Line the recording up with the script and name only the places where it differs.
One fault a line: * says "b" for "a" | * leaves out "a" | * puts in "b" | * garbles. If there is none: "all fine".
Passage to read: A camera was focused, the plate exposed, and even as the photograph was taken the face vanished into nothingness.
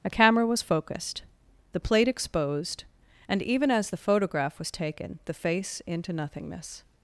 * leaves out "vanished"